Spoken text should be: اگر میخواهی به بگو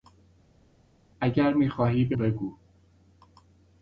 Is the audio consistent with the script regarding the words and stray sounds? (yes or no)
yes